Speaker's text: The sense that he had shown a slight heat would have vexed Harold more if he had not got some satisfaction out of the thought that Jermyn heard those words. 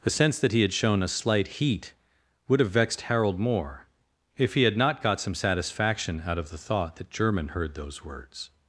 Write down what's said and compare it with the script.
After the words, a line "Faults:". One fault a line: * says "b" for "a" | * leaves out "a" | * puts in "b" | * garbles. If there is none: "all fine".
The sense that he had shown a slight heat would have vexed Harold more if he had not got some satisfaction out of the thought that Jermyn heard those words.
Faults:
all fine